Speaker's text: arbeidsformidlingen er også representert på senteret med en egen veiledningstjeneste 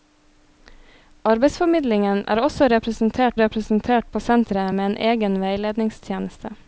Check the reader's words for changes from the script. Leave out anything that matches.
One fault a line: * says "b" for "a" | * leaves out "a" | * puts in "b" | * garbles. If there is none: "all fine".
* puts in "representert"